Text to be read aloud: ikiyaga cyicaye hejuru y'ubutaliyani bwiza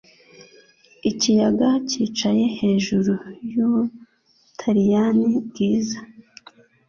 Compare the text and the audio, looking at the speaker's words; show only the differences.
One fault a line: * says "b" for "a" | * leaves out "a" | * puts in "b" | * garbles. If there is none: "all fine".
all fine